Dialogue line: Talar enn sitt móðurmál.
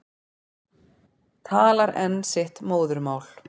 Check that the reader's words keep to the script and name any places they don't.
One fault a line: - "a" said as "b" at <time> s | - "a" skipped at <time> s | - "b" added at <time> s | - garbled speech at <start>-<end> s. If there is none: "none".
none